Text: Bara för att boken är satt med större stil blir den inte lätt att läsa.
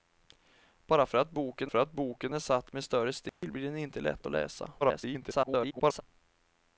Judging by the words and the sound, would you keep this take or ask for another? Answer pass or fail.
fail